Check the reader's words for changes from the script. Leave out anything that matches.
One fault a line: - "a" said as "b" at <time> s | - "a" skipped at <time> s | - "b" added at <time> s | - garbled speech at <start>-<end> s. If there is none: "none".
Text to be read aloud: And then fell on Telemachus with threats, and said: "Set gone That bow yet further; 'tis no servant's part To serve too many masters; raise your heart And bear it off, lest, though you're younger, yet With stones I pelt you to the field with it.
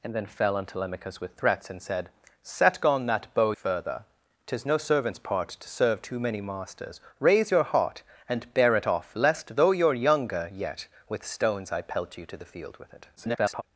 - "yet" skipped at 3.5 s
- garbled speech at 13.2-13.6 s